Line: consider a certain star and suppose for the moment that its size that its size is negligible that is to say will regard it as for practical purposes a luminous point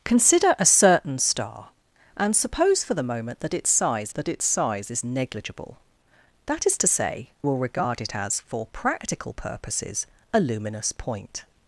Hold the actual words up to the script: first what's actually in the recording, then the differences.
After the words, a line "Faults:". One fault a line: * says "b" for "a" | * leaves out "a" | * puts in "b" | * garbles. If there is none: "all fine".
consider a certain star and suppose for the moment that its size that its size is negligible that is to say will regard it as for practical purposes a luminous point
Faults:
all fine